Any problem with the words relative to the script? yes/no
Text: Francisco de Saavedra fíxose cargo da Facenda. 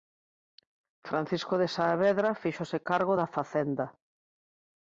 no